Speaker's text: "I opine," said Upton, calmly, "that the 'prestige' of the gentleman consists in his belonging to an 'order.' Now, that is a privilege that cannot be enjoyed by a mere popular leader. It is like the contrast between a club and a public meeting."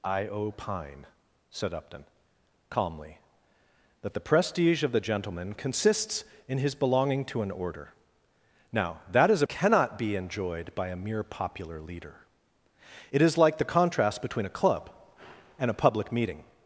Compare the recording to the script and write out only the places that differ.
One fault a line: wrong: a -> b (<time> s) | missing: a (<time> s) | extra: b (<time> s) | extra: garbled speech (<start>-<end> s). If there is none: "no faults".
missing: a privilege that (9.4 s)